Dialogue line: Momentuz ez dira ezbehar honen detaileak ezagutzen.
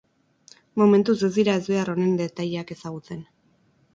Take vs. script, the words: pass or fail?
pass